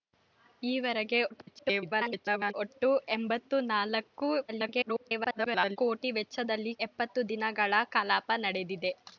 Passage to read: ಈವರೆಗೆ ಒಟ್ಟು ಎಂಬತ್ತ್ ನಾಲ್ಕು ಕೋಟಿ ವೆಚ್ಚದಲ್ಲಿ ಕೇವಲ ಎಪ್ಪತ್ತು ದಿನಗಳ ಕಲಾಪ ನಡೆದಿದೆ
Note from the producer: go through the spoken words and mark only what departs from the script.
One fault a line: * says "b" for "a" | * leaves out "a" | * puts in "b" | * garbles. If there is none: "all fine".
* garbles
* garbles
* leaves out "ಕೇವಲ"